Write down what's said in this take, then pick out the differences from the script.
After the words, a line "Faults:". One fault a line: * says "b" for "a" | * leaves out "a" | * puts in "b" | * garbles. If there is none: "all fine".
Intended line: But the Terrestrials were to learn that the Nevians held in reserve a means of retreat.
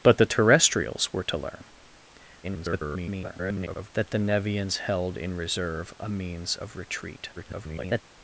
But the Terrestrials were to learn [garbled] that the Nevians held in reserve a means of retreat. [garbled]
Faults:
* garbles
* garbles